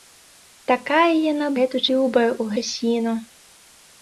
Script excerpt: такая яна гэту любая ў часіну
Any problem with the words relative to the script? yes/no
no